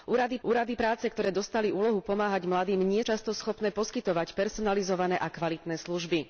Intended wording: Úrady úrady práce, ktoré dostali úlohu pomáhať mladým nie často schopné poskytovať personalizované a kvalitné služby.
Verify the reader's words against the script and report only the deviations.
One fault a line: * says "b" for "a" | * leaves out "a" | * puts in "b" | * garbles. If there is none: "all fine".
all fine